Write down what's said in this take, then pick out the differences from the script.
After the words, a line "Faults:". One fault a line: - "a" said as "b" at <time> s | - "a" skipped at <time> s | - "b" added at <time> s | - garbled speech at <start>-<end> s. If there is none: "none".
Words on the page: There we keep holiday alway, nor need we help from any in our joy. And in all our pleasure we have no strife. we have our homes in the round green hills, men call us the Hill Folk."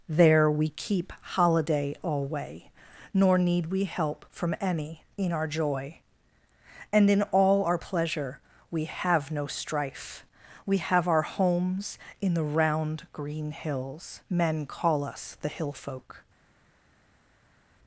There we keep holiday alway, nor need we help from any in our joy. And in all our pleasure we have no strife. we have our homes in the round green hills, men call us the Hill Folk."
Faults:
none